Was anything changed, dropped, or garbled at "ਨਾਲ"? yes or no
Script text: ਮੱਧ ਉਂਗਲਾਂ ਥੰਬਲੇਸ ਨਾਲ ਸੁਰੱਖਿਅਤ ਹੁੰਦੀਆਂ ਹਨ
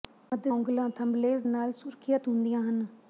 no